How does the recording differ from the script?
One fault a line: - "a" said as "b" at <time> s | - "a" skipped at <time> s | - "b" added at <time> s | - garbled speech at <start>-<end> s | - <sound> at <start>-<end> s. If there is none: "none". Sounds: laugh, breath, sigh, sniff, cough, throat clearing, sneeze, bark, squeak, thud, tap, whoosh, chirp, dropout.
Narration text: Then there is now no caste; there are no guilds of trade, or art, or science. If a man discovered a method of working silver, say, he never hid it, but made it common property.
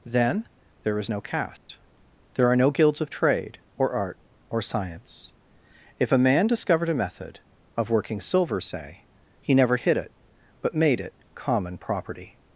- "now" skipped at 1.1 s
- dropout at 1.6-1.7 s